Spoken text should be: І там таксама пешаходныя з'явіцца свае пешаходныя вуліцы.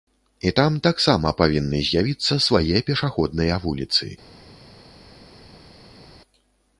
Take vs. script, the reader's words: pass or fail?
fail